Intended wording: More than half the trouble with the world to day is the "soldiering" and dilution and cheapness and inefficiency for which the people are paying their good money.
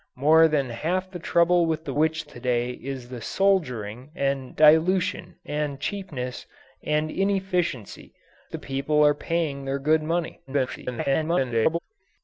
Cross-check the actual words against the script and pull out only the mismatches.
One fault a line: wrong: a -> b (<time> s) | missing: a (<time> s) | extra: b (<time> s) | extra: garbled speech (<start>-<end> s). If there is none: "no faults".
wrong: world -> which (1.9 s)
missing: for which (8.1 s)
extra: garbled speech (10.5-11.8 s)